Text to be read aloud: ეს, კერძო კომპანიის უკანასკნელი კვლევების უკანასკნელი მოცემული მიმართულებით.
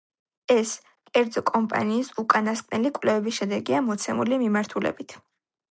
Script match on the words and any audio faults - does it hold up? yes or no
no